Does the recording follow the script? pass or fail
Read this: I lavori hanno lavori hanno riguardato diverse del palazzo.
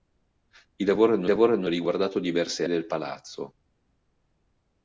pass